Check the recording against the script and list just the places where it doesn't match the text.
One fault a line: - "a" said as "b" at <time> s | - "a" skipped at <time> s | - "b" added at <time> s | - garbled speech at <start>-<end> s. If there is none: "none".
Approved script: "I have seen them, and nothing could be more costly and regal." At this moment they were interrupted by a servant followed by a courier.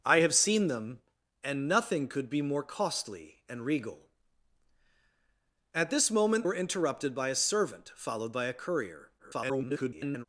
- "they" skipped at 6.5 s
- garbled speech at 9.2-10.3 s